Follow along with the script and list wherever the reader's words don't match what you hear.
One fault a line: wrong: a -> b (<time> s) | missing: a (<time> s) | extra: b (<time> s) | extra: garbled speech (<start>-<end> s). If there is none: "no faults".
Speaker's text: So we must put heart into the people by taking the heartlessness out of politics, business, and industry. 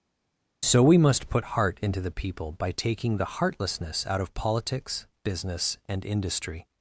no faults